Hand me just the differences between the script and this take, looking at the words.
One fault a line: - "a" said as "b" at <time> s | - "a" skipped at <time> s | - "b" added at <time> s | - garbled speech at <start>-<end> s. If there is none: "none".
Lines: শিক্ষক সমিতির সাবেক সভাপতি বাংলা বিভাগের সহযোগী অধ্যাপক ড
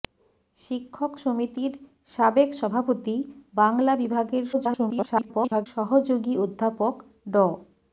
- garbled speech at 4.5-5.7 s